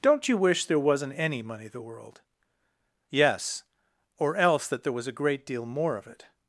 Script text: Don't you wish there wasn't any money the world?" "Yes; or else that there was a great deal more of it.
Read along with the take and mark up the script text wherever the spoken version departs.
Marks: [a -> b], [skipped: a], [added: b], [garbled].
Don't you wish there wasn't any money the world?" "Yes; or else that there was a great deal more of it.